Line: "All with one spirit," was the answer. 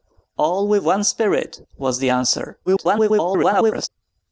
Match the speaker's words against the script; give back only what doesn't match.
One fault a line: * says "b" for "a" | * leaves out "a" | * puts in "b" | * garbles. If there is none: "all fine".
* garbles